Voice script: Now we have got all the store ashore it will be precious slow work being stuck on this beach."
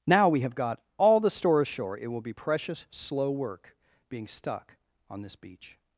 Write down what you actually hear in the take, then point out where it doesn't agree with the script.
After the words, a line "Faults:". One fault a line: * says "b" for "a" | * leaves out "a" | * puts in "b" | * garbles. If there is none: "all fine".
Now we have got all the store ashore it will be precious slow work being stuck on this beach."
Faults:
all fine